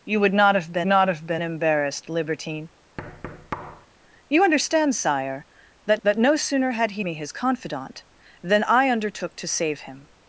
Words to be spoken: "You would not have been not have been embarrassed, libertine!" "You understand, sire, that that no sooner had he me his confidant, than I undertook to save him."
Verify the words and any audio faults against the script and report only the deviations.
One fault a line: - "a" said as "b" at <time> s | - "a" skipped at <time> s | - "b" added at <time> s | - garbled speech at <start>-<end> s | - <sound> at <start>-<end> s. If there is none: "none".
- thud at 3.0-3.9 s